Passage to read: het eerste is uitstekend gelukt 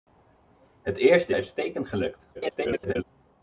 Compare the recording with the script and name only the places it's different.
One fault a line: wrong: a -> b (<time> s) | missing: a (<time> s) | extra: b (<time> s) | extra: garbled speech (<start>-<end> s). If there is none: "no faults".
missing: is (1.3 s)
extra: garbled speech (2.3-3.0 s)